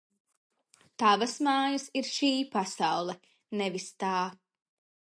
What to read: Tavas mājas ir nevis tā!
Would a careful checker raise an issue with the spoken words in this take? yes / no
yes